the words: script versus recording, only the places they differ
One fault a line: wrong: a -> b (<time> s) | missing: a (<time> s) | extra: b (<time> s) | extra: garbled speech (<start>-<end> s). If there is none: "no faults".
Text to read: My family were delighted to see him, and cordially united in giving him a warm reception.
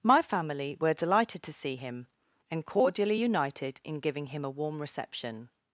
no faults